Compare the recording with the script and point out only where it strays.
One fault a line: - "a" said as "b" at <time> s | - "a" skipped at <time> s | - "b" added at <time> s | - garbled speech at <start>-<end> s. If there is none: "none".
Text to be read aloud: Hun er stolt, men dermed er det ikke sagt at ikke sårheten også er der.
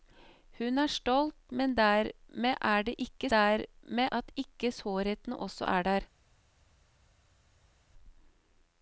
- "sagt" said as "dermed" at 3.3 s